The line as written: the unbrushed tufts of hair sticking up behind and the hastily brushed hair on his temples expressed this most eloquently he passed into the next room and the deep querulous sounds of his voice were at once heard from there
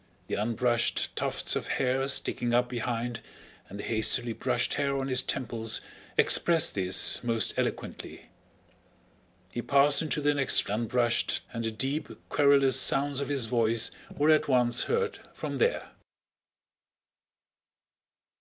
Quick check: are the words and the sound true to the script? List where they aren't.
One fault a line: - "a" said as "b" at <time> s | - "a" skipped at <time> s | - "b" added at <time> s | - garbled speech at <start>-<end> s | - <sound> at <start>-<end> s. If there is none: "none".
- "room" said as "unbrushed" at 10.7 s